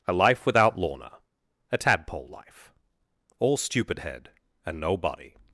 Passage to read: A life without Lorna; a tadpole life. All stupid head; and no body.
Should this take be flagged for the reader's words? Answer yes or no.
no